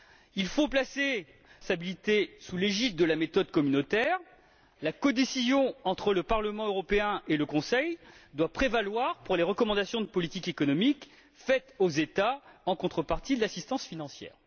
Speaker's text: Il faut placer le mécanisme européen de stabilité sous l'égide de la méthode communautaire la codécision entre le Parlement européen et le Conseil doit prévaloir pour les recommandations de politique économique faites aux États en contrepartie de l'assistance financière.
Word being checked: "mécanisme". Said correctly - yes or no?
no